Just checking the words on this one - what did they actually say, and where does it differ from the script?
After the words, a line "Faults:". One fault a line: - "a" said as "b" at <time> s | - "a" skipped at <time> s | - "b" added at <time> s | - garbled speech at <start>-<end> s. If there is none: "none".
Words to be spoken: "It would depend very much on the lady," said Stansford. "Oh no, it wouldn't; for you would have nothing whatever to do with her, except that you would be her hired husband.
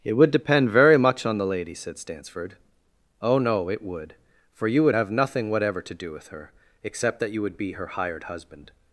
"It would depend very much on the lady," said Stansford. "Oh no, it would; for you would have nothing whatever to do with her, except that you would be her hired husband.
Faults:
- "wouldn't" said as "would" at 3.8 s